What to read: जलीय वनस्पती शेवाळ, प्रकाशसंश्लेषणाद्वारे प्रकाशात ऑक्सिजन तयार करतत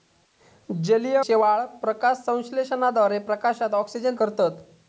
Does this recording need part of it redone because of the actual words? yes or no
yes